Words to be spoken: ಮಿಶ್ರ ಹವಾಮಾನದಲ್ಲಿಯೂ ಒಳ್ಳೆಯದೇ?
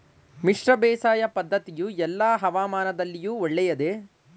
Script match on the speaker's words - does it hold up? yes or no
no